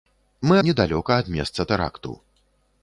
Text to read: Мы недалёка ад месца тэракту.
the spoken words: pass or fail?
pass